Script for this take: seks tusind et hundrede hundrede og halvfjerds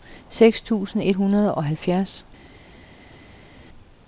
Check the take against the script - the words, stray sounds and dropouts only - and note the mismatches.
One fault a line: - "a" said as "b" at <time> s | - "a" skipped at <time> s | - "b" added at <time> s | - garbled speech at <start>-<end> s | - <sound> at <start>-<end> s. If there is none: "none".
- "hundrede" skipped at 1.5 s